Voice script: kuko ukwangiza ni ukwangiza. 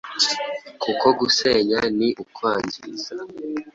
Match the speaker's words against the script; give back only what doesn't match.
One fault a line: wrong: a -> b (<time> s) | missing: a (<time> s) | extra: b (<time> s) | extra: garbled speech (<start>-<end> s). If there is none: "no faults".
wrong: ukwangiza -> gusenya (1.2 s)